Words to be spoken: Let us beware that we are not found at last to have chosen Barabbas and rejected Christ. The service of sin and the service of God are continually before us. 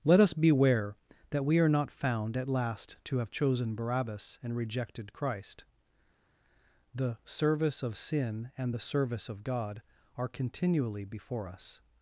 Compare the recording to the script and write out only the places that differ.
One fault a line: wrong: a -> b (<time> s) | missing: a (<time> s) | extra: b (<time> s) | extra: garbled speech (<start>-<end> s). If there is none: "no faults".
no faults